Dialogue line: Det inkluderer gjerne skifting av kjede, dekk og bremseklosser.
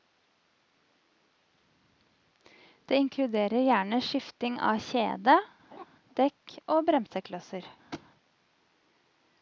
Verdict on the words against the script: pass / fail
pass